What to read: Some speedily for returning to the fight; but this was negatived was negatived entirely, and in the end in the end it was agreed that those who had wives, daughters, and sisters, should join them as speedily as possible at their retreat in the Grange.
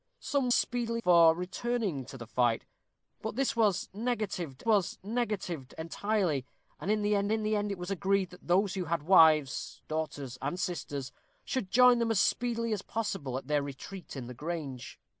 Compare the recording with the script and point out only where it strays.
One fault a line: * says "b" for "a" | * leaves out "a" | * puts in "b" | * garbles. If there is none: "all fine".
all fine